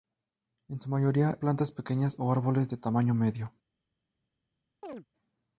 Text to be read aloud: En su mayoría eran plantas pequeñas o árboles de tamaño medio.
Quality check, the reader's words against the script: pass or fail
fail